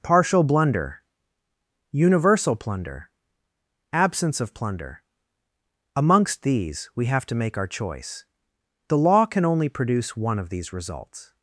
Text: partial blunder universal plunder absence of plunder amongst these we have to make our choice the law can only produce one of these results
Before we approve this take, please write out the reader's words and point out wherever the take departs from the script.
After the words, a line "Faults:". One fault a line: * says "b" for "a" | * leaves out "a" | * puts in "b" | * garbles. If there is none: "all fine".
partial blunder universal plunder absence of plunder amongst these we have to make our choice the law can only produce one of these results
Faults:
all fine